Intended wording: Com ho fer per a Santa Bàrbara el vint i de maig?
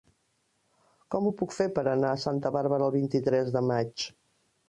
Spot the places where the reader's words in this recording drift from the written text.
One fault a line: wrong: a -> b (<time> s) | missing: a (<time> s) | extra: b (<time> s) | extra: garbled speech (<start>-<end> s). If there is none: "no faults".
extra: puc (1.4 s)
extra: anar (2.0 s)
extra: tres (3.3 s)